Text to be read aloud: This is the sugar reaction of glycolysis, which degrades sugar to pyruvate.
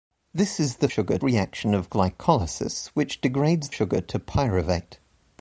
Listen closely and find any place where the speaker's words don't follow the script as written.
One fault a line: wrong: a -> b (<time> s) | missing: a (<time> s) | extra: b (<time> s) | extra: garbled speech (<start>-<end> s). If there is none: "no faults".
no faults